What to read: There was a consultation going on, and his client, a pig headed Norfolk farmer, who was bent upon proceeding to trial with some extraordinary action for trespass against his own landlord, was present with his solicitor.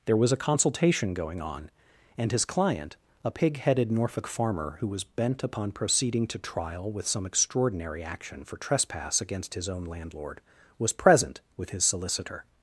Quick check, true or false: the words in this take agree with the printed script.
true